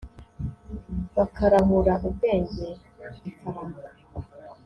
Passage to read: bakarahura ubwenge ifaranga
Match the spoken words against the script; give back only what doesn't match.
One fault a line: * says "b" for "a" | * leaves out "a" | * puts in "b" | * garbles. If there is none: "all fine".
all fine